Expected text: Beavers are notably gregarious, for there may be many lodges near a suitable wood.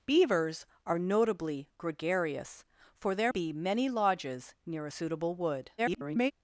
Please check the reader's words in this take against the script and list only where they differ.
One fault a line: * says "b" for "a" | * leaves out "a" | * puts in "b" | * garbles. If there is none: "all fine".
* leaves out "may"
* garbles